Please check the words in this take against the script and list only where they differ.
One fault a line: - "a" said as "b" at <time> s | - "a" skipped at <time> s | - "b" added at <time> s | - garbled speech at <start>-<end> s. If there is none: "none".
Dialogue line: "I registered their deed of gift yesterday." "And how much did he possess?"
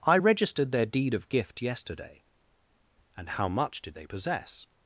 - "he" said as "they" at 3.9 s